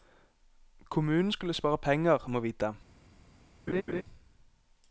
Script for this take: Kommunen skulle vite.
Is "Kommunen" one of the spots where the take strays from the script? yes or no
no